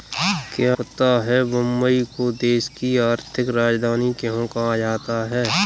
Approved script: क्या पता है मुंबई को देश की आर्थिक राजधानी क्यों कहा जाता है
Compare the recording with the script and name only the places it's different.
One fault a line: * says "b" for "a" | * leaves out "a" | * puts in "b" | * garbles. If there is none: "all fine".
all fine